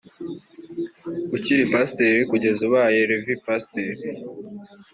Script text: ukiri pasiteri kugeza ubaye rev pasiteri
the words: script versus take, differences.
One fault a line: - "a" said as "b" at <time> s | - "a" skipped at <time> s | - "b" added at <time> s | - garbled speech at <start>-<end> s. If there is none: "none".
none